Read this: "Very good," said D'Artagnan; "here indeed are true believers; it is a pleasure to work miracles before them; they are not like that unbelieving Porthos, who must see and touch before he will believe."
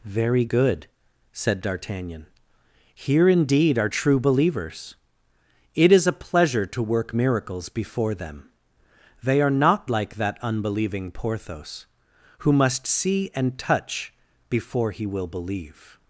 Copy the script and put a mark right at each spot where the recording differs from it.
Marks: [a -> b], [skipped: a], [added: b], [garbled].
"Very good," said D'Artagnan; "here indeed are true believers; it is a pleasure to work miracles before them; they are not like that unbelieving Porthos, who must see and touch before he will believe."